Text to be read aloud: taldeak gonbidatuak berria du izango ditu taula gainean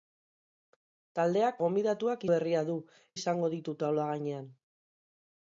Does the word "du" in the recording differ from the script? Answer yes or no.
no